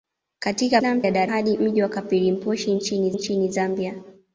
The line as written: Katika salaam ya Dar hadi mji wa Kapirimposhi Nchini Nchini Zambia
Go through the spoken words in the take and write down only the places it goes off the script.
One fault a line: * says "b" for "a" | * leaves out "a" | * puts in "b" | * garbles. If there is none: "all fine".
all fine